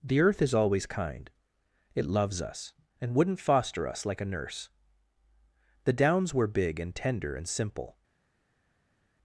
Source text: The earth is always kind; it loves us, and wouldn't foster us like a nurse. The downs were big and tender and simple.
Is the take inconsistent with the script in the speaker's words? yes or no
no